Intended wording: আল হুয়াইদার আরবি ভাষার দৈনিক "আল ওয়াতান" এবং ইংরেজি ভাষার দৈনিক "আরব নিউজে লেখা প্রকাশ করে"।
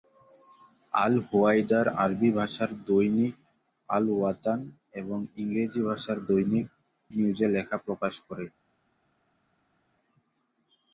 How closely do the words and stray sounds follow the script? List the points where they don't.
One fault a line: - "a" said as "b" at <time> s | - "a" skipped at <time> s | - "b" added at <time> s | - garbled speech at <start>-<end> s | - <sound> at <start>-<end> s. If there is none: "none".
- "আরব" skipped at 6.7 s